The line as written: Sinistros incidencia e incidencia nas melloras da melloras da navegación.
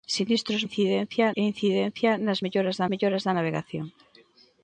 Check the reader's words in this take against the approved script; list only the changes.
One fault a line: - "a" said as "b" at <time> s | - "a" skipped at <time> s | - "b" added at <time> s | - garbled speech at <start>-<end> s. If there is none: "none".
none